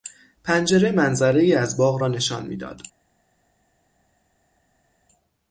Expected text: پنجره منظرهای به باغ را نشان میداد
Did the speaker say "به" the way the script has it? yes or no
no